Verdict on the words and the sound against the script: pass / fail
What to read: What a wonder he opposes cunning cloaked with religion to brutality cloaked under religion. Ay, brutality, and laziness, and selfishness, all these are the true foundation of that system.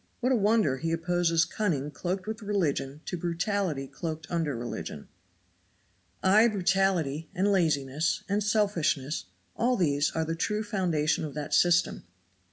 pass